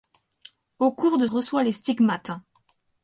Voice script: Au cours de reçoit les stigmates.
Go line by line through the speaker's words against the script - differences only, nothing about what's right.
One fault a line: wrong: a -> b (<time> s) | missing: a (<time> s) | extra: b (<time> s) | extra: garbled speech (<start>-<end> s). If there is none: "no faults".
no faults